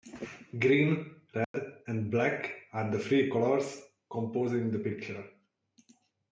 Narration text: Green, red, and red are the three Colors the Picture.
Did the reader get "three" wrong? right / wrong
right